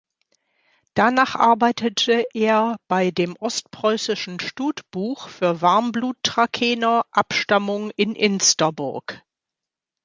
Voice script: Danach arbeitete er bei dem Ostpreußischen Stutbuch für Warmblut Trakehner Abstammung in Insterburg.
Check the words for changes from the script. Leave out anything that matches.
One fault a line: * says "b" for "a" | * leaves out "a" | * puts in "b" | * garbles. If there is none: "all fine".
all fine